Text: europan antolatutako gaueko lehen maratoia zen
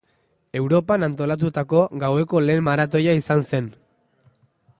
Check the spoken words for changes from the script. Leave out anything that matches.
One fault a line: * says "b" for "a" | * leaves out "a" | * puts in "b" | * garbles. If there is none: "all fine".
* puts in "izan"